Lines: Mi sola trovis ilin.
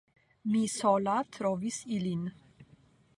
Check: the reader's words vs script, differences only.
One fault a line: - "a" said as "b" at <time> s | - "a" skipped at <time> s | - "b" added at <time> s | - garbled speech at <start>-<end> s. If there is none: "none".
none